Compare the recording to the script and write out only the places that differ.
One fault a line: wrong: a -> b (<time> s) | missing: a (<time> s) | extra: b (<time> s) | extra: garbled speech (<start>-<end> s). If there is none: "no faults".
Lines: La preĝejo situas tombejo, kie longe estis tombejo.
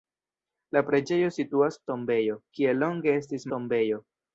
no faults